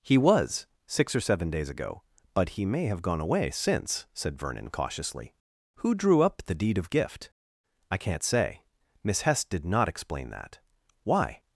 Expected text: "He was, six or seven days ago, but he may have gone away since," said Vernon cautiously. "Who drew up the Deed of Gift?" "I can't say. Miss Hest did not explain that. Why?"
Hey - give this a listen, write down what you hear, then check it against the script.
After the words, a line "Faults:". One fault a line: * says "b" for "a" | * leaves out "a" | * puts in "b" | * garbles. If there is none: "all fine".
"He was, six or seven days ago, but he may have gone away since," said Vernon cautiously. "Who drew up the Deed of Gift?" "I can't say. Miss Hest did not explain that. Why?"
Faults:
all fine